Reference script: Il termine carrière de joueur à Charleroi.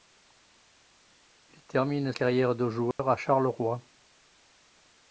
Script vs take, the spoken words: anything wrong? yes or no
no